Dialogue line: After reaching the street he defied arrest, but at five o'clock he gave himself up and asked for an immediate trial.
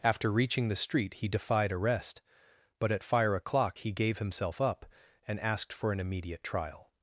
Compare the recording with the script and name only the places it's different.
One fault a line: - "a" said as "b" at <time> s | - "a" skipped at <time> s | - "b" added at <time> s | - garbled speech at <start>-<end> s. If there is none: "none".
- "five" said as "fire" at 3.0 s